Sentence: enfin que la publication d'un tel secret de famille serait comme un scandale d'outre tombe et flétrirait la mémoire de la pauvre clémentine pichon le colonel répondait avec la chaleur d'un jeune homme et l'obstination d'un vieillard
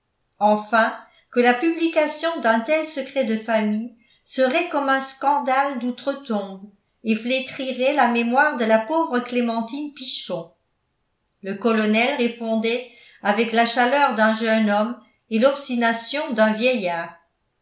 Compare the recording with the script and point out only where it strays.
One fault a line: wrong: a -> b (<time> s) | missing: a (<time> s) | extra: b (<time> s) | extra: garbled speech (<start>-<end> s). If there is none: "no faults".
no faults